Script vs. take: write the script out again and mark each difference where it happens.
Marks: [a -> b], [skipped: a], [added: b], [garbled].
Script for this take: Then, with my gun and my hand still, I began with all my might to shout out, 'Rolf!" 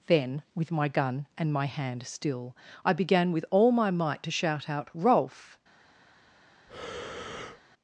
Then, with my gun and my hand still, I began with all my might to shout out, 'Rolf!"